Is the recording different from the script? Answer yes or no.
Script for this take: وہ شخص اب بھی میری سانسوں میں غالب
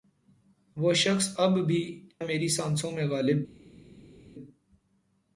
no